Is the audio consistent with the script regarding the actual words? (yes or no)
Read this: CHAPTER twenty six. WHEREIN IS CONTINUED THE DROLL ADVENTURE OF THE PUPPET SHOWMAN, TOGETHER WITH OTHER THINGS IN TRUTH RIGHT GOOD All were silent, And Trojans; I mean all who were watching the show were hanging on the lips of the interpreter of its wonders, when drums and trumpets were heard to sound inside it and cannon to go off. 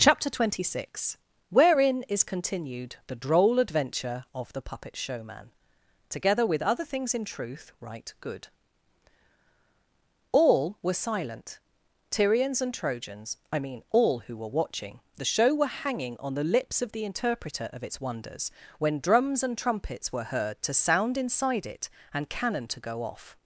no